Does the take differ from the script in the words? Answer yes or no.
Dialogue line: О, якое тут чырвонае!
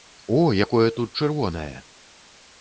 no